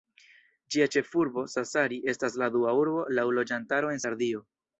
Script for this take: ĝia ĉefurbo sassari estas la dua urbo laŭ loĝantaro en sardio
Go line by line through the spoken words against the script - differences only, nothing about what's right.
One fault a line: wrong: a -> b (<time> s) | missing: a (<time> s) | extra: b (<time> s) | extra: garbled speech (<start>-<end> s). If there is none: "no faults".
no faults